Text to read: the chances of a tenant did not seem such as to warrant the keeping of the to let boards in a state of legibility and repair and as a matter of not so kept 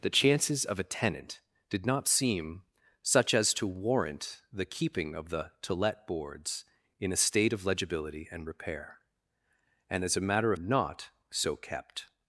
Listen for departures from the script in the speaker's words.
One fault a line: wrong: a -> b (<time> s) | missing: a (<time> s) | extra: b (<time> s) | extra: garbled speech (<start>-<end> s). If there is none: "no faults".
no faults